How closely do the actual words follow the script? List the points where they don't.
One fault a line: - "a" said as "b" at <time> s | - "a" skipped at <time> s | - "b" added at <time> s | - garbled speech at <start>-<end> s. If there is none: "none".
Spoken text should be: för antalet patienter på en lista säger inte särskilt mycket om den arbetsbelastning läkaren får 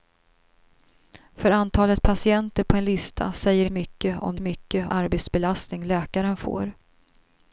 - "inte särskilt" skipped at 3.6 s
- "den" said as "mycket" at 4.4 s